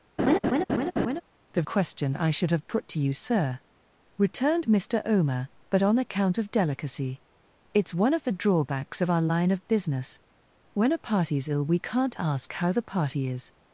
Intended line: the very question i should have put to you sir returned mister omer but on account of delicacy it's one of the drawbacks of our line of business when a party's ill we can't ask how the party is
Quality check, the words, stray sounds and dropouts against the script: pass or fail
fail